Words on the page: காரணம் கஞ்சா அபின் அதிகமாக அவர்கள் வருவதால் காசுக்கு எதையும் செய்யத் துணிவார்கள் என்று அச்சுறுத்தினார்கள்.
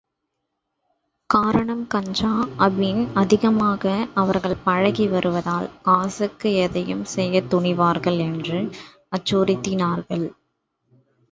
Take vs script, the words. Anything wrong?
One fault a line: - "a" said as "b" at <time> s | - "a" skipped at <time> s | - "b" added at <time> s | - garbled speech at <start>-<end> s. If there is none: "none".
- "பழகி" added at 4.6 s